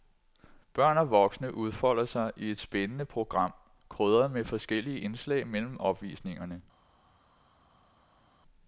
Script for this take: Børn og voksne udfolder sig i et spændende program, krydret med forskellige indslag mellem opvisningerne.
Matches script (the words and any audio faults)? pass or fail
pass